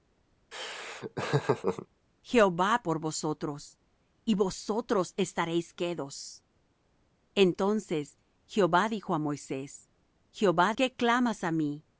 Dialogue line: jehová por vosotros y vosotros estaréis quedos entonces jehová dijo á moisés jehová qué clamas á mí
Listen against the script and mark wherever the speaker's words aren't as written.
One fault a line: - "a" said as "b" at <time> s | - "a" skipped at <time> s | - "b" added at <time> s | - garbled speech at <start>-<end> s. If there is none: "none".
none